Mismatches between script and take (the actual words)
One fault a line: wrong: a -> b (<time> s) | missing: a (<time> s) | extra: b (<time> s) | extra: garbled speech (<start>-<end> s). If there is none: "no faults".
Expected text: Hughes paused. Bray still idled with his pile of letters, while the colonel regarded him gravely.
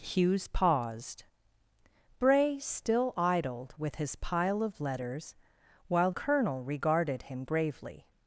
missing: the (6.1 s)